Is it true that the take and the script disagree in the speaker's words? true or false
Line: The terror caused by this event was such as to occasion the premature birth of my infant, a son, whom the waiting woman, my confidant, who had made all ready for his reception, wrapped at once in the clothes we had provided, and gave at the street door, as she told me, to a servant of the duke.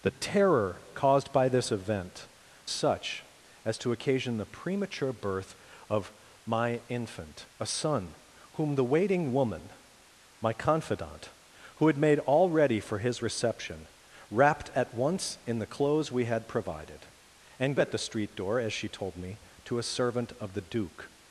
true